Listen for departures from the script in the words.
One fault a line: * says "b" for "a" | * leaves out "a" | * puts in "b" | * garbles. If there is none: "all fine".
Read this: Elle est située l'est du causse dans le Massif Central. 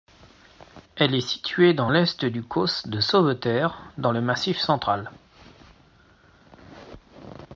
* puts in "dans"
* puts in "de Sauveterre"